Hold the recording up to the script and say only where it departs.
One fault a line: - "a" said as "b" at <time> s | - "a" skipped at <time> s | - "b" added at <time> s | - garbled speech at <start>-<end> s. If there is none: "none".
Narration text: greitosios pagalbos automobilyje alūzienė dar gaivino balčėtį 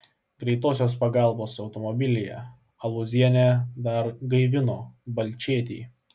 none